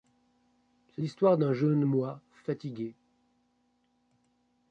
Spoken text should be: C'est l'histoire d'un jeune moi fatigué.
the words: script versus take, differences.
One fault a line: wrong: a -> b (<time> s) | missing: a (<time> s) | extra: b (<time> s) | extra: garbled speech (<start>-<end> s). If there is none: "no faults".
no faults